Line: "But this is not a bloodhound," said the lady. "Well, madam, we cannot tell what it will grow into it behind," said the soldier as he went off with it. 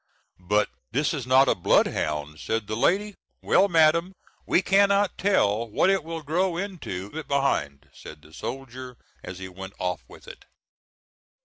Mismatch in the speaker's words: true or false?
false